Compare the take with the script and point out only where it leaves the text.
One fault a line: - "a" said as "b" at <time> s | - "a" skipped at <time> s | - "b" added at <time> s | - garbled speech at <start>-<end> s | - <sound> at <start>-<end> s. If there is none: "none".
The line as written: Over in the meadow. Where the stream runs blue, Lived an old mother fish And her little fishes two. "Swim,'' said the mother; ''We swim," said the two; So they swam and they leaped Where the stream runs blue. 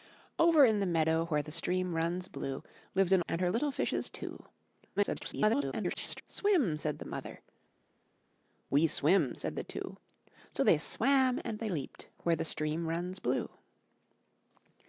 - "old mother fish" skipped at 3.2 s
- garbled speech at 5.0-6.2 s